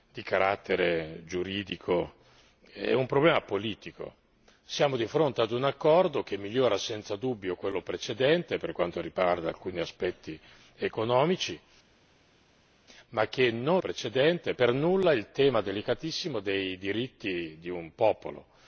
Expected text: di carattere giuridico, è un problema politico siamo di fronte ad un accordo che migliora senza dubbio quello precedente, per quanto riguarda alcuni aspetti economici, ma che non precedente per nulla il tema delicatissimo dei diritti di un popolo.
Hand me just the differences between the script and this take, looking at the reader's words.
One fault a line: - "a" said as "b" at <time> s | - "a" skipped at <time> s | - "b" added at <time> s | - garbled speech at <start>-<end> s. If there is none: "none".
none